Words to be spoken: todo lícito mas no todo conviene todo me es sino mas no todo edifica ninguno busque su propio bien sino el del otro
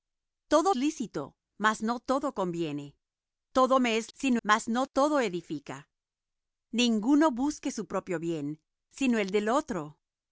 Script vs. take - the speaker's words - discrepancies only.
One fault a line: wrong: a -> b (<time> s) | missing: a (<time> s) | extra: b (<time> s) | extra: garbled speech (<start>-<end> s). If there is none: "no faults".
no faults